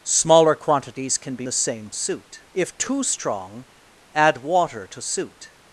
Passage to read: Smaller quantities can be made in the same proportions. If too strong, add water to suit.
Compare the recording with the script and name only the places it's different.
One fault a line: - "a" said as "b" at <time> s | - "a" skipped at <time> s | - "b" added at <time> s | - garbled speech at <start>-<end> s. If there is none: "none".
- "made in" skipped at 1.5 s
- "proportions" said as "suit" at 1.9 s